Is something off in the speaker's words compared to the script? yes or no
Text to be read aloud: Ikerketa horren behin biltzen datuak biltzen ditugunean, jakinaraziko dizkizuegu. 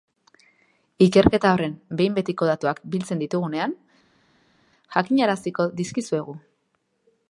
yes